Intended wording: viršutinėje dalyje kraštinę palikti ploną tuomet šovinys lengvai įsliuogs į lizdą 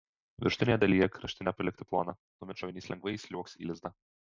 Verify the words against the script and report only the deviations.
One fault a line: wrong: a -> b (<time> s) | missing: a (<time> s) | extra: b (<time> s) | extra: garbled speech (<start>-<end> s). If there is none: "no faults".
no faults